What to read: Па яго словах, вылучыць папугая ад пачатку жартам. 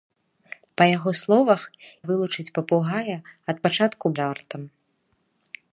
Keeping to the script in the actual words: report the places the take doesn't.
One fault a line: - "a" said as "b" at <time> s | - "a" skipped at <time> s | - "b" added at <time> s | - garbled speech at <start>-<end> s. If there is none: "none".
none